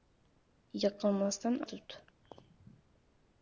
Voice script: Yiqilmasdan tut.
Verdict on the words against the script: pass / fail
pass